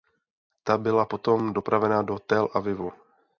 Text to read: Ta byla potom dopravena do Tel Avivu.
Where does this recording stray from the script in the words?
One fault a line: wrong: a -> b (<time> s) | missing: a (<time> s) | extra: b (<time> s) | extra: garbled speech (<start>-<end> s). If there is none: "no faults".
no faults